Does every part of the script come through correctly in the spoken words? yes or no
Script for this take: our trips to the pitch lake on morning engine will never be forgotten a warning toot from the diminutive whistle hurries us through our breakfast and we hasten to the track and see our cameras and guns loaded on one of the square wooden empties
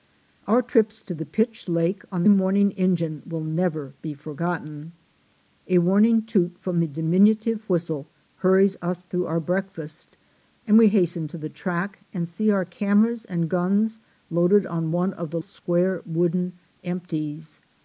yes